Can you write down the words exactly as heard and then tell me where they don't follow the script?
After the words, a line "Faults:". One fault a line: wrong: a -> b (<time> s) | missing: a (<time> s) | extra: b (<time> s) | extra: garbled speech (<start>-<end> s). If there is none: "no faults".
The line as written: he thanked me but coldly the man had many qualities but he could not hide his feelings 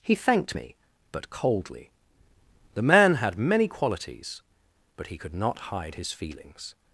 he thanked me but coldly the man had many qualities but he could not hide his feelings
Faults:
no faults